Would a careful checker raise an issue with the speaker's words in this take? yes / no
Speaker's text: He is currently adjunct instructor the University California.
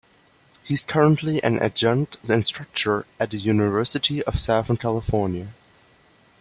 yes